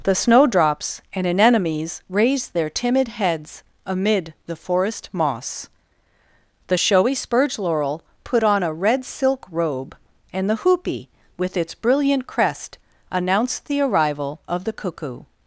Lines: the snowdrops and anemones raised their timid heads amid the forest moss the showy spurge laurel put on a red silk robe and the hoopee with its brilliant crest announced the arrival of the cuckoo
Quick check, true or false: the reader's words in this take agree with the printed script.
true